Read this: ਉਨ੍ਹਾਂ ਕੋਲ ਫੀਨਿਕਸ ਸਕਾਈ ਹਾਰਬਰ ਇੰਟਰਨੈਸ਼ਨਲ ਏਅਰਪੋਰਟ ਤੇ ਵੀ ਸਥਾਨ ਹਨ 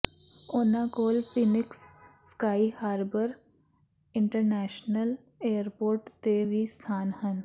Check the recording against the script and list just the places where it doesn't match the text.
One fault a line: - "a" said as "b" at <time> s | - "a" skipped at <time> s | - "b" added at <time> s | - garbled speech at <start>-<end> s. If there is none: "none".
none